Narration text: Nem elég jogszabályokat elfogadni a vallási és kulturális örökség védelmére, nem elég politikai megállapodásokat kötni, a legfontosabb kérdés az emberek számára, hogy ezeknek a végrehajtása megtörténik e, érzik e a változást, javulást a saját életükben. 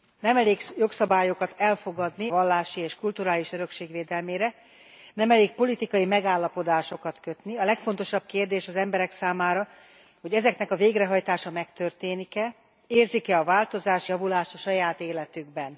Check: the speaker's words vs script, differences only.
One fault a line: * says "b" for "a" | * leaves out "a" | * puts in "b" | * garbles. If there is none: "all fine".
* leaves out "a"